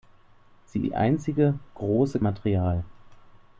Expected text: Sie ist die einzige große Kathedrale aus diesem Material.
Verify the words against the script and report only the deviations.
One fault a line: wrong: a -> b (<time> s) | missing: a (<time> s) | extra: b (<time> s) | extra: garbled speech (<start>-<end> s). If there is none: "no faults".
missing: ist (0.9 s)
missing: Kathedrale aus diesem (2.2 s)